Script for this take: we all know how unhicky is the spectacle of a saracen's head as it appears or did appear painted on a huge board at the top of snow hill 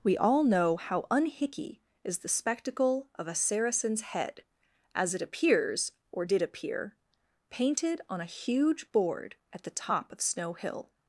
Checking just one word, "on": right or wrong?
right